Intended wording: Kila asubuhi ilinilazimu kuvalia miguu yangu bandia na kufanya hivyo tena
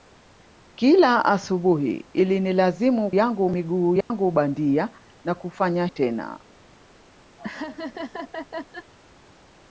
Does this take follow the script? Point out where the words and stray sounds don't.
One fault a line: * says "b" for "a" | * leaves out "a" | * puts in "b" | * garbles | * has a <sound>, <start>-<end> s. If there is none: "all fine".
* says "yangu" for "kuvalia"
* has a dropout, 4.0-4.1 s
* leaves out "hivyo"
* has a laugh, 7.4-8.9 s